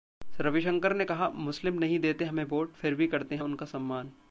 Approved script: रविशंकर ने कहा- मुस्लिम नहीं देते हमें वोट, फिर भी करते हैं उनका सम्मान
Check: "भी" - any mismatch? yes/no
no